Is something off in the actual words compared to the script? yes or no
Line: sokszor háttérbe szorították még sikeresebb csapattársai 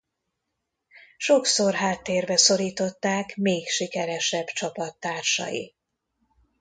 no